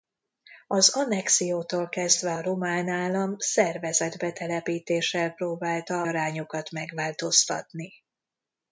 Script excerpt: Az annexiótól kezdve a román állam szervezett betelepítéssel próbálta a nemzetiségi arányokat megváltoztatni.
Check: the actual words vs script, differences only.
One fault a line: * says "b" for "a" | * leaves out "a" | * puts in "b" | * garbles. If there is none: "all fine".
* leaves out "a nemzetiségi"